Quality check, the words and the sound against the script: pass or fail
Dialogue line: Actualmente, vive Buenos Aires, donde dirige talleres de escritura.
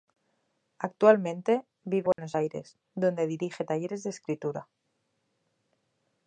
fail